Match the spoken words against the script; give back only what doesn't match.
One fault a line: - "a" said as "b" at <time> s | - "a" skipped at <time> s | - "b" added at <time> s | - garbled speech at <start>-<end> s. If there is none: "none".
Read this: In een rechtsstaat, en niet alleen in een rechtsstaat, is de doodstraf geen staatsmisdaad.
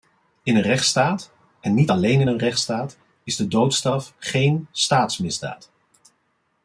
none